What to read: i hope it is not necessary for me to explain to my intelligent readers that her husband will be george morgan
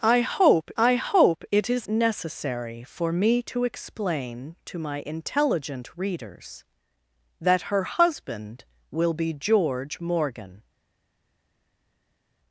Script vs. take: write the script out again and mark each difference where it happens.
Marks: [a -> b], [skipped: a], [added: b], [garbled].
i hope [added: i hope] it is [skipped: not] necessary for me to explain to my intelligent readers that her husband will be george morgan